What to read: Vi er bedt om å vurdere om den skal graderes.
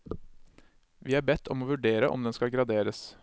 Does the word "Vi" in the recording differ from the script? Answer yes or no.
no